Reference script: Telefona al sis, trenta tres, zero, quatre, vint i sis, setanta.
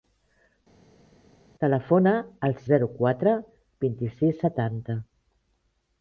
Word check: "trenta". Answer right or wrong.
wrong